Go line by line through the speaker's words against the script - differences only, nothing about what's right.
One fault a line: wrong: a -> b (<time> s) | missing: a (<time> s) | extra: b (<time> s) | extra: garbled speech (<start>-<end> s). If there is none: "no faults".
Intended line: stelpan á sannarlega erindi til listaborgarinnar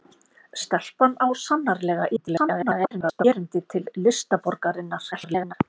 extra: garbled speech (2.2-3.2 s)
extra: garbled speech (5.1-5.5 s)